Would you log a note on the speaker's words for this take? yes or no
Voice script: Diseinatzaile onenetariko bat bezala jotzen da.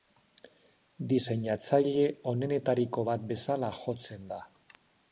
no